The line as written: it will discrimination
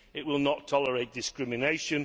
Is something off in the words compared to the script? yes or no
yes